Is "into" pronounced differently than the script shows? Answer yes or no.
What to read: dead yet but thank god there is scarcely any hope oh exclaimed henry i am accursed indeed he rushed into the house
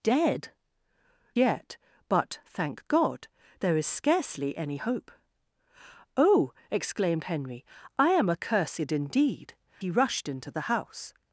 no